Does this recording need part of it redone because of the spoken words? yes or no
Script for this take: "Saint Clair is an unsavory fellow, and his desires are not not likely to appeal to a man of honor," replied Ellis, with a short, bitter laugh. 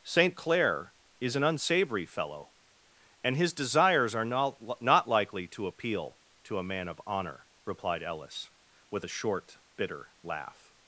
no